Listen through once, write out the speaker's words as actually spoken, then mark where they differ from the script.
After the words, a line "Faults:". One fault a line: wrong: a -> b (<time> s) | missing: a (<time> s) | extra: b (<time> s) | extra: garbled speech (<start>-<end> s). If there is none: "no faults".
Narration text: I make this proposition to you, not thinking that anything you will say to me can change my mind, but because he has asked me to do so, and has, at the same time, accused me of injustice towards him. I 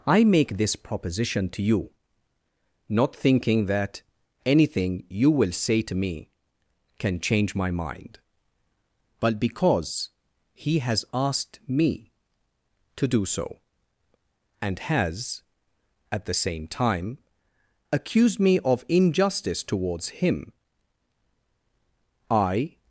I make this proposition to you, not thinking that anything you will say to me can change my mind, but because he has asked me to do so, and has, at the same time, accused me of injustice towards him. I
Faults:
no faults